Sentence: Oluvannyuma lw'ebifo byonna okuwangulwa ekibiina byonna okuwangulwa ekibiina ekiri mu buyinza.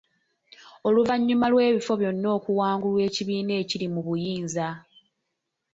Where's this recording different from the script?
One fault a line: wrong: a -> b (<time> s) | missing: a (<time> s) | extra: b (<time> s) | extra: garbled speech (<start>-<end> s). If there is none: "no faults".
missing: byonna okuwangulwa ekibiina (3.5 s)